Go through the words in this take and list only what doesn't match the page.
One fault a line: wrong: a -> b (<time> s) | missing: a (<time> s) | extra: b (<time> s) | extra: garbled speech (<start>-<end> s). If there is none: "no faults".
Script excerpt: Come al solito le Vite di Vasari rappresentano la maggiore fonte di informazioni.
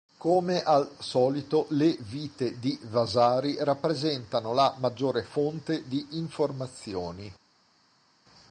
no faults